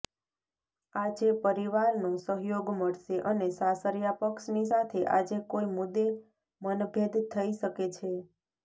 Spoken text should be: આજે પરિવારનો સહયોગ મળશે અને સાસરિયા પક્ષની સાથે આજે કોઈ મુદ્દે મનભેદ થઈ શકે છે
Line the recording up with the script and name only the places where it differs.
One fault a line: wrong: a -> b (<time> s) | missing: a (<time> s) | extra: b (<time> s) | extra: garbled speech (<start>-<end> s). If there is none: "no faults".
no faults